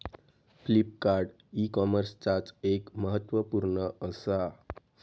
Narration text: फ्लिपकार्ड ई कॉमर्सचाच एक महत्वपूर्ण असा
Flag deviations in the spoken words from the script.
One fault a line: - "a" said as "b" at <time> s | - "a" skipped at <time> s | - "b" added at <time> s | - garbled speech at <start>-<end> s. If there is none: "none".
none